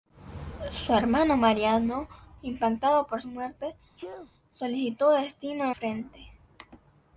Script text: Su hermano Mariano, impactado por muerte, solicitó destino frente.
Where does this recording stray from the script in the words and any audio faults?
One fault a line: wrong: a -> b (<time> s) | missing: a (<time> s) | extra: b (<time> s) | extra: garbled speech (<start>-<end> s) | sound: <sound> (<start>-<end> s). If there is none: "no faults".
sound: sneeze (4.0-4.3 s)